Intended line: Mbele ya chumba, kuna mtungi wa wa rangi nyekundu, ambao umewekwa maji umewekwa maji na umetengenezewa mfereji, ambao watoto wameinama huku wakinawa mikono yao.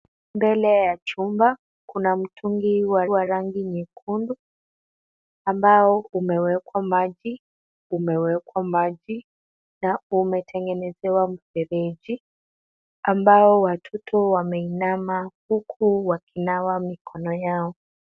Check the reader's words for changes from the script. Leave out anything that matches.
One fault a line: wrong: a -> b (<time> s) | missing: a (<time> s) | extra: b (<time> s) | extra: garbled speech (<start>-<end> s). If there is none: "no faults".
no faults